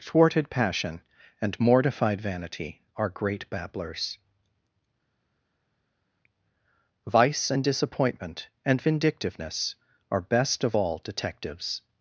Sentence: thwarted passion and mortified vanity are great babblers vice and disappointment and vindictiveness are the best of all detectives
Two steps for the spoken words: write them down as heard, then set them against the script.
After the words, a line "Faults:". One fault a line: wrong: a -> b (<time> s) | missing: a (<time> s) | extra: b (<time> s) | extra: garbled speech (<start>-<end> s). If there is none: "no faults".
thwarted passion and mortified vanity are great babblers vice and disappointment and vindictiveness are best of all detectives
Faults:
missing: the (10.2 s)